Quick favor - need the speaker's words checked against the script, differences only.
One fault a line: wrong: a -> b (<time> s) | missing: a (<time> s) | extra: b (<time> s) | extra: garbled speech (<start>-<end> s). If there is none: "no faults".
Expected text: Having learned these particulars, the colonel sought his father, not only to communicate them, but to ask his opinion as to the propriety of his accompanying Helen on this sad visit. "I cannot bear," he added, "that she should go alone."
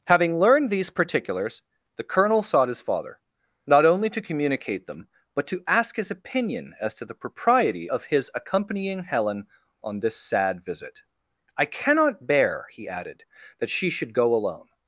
no faults